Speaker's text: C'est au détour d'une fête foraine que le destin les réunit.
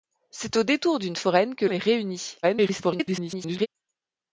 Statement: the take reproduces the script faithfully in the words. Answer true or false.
false